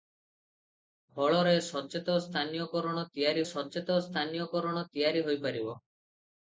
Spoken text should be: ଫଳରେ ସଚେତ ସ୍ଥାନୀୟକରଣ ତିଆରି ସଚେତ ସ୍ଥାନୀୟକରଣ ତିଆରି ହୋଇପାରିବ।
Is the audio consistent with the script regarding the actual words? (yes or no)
yes